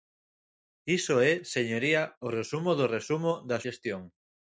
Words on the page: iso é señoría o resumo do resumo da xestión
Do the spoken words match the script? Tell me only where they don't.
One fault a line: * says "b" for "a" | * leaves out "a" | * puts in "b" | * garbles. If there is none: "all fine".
all fine